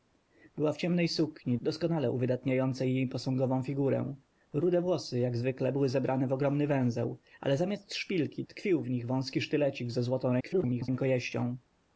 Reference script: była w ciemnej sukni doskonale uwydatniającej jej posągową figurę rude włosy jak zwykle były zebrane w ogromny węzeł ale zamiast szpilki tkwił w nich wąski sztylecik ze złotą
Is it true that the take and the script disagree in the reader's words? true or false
true